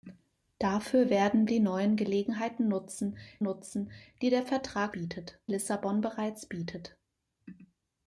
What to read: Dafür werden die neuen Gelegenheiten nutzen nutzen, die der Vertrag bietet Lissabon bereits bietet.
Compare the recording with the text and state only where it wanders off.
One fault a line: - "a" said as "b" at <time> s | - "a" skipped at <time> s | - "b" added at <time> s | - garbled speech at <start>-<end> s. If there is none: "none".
none